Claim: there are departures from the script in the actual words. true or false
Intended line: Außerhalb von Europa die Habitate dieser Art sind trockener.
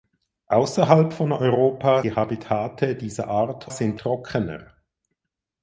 false